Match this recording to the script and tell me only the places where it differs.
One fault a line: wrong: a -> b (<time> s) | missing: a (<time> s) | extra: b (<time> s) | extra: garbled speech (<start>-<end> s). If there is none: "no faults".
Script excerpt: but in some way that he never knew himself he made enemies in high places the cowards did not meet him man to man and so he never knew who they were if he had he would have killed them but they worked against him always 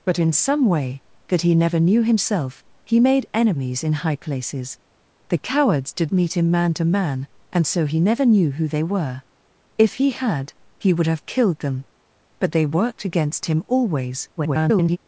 missing: not (6.1 s)
extra: garbled speech (14.4-15.0 s)